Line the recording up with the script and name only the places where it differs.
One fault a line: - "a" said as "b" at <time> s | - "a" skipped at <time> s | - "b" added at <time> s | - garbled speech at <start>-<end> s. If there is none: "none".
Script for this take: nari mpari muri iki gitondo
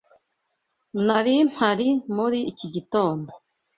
none